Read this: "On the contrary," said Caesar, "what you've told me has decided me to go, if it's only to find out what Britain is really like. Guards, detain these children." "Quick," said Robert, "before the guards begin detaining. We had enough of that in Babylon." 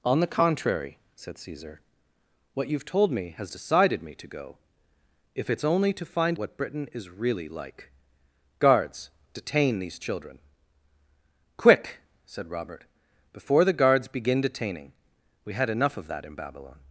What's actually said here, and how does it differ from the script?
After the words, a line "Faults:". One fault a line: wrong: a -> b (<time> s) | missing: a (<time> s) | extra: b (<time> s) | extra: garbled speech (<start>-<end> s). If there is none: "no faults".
"On the contrary," said Caesar, "what you've told me has decided me to go, if it's only to find what Britain is really like. Guards, detain these children." "Quick," said Robert, "before the guards begin detaining. We had enough of that in Babylon."
Faults:
missing: out (6.4 s)